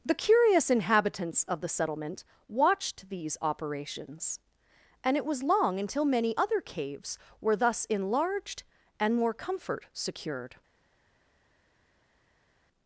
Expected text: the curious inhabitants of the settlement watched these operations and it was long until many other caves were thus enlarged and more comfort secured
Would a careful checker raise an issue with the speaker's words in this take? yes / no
no